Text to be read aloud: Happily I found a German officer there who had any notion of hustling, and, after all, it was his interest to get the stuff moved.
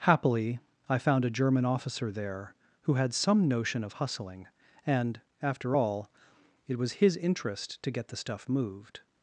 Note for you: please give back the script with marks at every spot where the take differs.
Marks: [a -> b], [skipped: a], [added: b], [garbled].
Happily I found a German officer there who had [any -> some] notion of hustling, and, after all, it was his interest to get the stuff moved.